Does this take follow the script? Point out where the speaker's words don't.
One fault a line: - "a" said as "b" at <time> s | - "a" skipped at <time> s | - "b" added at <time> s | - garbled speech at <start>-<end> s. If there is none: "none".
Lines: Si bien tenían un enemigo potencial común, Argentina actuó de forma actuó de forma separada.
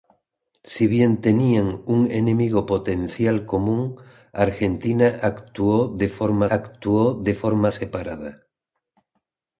none